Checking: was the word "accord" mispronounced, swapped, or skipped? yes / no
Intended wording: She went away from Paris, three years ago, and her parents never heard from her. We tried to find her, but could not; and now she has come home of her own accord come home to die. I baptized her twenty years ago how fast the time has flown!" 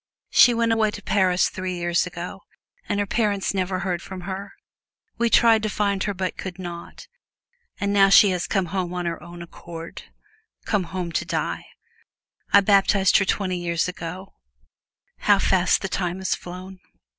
no